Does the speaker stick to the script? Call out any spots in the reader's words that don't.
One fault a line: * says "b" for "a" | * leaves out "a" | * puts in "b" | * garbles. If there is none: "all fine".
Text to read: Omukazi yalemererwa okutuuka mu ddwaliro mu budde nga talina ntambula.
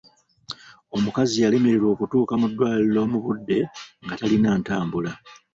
all fine